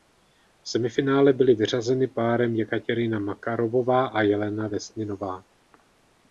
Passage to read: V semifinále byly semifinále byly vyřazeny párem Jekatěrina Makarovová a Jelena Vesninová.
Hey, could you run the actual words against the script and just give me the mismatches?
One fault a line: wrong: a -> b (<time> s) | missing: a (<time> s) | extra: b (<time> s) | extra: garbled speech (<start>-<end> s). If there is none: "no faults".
missing: semifinále byly (1.6 s)